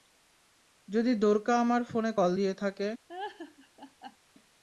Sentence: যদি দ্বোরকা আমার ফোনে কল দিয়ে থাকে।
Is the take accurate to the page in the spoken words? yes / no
yes